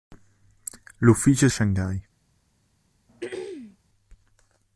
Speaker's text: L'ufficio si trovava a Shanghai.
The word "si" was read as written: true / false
false